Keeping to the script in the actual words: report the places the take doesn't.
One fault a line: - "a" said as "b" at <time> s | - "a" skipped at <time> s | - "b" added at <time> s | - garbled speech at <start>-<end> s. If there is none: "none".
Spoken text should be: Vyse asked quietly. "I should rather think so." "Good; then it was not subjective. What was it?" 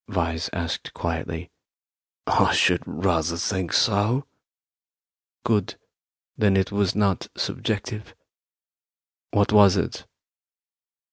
none